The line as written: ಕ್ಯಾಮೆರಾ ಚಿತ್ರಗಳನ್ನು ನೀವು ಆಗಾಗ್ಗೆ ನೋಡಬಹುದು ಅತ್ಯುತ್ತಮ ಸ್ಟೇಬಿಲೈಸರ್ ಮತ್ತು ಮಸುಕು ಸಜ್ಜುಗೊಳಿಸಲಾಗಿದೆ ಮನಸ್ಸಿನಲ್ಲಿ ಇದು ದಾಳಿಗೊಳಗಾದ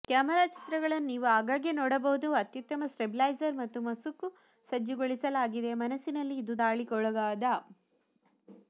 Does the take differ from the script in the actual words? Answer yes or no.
no